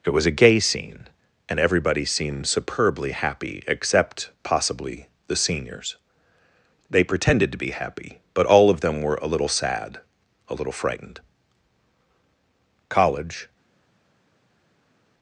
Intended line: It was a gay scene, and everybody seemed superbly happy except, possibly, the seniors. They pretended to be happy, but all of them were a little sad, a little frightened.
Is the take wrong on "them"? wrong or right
right